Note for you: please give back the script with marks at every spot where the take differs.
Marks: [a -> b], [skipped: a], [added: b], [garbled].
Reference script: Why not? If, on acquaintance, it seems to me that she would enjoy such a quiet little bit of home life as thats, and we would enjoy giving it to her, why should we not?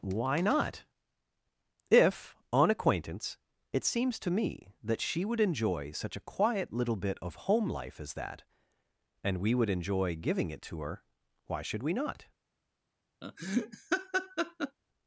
Why not? If, on acquaintance, it seems to me that she would enjoy such a quiet little bit of home life as [thats, -> that] and we would enjoy giving it to her, why should we not?